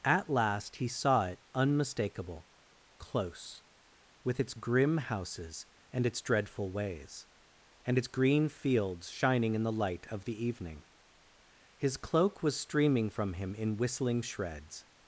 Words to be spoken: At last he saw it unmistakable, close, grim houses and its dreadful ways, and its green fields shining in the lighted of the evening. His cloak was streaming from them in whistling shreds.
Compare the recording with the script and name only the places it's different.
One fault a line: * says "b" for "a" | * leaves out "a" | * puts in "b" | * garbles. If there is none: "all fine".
* puts in "with its"
* says "light" for "lighted"
* says "him" for "them"